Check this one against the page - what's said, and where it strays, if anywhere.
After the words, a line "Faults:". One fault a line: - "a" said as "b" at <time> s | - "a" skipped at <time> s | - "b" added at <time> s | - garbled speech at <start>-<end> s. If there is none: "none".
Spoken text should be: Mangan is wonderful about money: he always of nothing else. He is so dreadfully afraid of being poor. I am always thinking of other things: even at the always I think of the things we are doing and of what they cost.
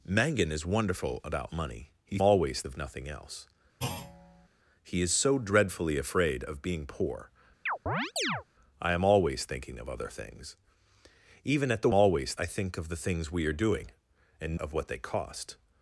Mangan is wonderful about money: he always of nothing else. He is so dreadfully afraid of being poor. I am always thinking of other things: even at the always I think of the things we are doing and of what they cost.
Faults:
none